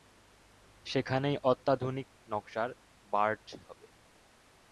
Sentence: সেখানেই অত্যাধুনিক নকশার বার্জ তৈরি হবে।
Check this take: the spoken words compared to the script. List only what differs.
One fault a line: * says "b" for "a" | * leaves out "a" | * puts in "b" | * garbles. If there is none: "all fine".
* leaves out "তৈরি"